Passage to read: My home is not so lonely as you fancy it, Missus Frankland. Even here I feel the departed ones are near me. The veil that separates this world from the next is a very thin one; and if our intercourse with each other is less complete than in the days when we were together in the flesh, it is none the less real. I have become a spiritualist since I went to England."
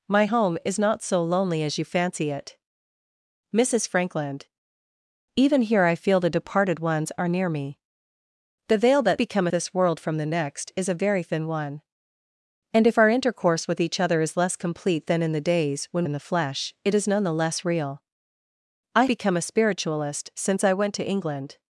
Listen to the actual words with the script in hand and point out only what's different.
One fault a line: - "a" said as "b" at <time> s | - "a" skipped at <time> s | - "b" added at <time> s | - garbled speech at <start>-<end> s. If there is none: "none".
- "separates" said as "become" at 9.2 s
- "we were together" skipped at 16.1 s
- "have" skipped at 19.1 s